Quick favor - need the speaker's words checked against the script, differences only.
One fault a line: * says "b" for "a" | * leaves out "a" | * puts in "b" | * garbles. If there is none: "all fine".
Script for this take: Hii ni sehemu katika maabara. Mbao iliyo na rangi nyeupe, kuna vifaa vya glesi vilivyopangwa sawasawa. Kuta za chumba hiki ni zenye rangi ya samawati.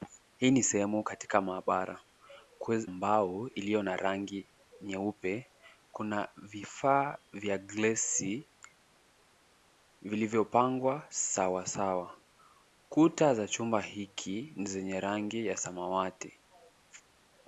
all fine